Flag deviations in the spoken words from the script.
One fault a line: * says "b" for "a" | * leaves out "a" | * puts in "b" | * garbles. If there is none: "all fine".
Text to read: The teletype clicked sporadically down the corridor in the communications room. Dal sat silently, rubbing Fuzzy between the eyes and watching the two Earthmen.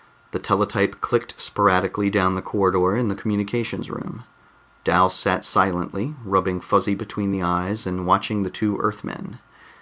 all fine